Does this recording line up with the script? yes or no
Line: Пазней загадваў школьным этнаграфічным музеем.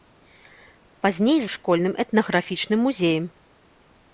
no